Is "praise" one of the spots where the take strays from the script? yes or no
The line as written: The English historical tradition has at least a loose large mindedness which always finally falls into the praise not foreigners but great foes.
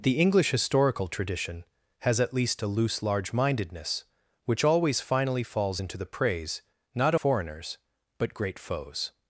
no